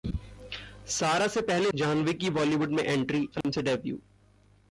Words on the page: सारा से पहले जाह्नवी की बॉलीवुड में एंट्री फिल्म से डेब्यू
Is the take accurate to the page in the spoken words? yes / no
yes